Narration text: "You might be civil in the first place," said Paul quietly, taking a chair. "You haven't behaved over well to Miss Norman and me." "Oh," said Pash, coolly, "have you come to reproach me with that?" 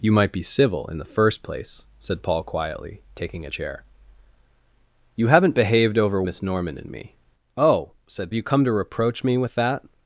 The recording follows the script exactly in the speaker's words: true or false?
false